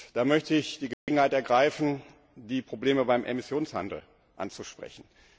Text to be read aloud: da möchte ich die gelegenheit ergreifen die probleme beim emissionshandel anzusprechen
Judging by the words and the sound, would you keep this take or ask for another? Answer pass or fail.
fail